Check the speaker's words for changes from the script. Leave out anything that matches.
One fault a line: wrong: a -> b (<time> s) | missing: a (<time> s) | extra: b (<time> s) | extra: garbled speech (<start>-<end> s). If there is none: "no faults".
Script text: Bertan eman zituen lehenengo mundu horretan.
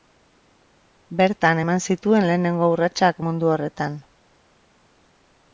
extra: urratsak (2.8 s)